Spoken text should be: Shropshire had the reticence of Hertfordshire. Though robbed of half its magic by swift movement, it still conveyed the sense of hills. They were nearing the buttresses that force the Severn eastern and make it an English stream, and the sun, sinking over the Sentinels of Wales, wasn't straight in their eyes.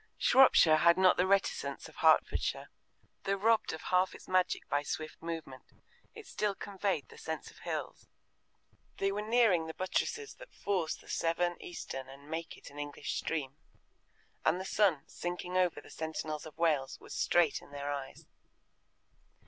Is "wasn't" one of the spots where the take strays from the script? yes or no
yes